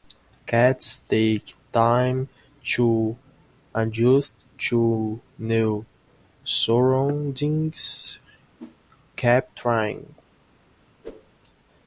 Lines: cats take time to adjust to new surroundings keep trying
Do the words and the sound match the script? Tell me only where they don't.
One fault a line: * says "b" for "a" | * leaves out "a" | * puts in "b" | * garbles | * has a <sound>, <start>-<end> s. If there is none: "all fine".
* has a whoosh, 8.6-8.8 s
* has a whoosh, 11.0-11.3 s